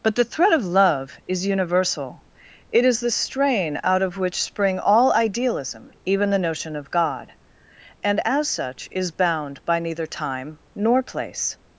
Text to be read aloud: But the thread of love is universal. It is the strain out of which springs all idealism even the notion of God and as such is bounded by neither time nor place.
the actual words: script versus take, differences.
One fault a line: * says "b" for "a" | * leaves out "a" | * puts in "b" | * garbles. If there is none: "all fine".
* says "spring" for "springs"
* says "bound" for "bounded"